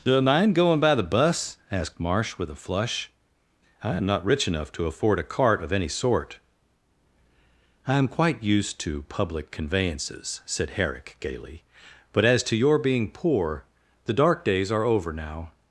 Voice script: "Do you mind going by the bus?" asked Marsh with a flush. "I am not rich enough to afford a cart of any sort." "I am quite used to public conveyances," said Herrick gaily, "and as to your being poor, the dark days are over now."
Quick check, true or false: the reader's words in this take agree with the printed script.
false